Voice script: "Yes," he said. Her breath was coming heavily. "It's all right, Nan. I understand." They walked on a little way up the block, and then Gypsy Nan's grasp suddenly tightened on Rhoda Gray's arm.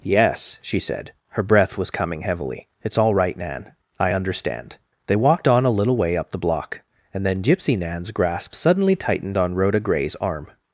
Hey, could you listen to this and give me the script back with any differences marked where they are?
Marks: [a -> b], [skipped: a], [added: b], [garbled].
"Yes," [he -> she] said. Her breath was coming heavily. "It's all right, Nan. I understand." They walked on a little way up the block, and then Gypsy Nan's grasp suddenly tightened on Rhoda Gray's arm.